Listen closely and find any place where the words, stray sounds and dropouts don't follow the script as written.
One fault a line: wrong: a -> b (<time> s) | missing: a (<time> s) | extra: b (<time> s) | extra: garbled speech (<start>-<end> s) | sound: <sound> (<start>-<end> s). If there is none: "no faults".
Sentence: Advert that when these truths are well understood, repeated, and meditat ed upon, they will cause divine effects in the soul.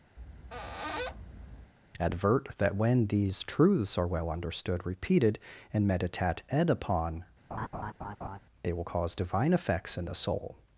sound: squeak (0.2-1.7 s)
sound: laugh (7.5-8.4 s)